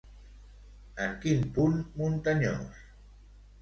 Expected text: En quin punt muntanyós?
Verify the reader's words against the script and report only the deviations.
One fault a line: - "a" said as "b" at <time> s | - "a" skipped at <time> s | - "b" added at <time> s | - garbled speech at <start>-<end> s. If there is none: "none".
none